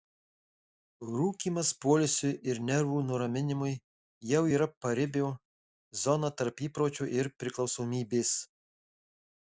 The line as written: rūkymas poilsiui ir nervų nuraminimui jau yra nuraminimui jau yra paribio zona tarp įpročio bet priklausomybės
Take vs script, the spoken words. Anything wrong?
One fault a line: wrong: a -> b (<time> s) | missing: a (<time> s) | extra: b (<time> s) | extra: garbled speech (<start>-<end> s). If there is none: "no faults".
missing: nuraminimui jau yra (4.7 s)
wrong: bet -> ir (7.2 s)